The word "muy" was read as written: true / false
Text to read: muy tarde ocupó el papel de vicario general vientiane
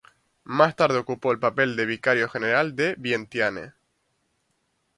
false